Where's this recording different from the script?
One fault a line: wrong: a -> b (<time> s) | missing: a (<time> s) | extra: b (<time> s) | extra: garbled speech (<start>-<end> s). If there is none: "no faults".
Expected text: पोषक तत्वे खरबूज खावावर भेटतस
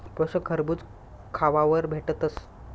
missing: तत्वे (0.5 s)